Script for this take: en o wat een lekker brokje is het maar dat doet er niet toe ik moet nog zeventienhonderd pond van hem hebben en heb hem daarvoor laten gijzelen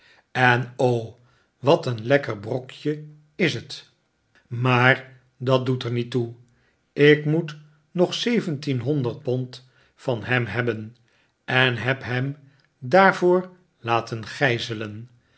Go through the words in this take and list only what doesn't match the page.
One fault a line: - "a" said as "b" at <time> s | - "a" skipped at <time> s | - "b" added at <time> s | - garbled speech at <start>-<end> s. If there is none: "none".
none